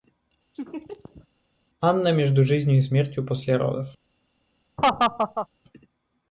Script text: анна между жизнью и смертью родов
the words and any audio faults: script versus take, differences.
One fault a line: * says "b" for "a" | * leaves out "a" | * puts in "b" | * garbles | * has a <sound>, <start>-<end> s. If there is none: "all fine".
* has a laugh, 0.5-1.3 s
* puts in "после"
* has a laugh, 4.8-5.5 s